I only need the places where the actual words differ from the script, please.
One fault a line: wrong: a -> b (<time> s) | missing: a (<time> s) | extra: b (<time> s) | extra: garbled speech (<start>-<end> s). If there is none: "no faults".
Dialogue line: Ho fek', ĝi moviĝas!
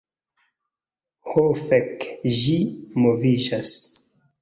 no faults